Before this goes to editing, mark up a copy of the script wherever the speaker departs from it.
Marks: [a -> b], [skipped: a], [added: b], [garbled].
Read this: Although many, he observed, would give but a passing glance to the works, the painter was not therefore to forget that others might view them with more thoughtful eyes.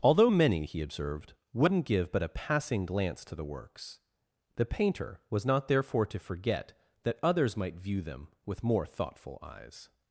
Although many, he observed, [would -> wouldn't] give but a passing glance to the works, the painter was not therefore to forget that others might view them with more thoughtful eyes.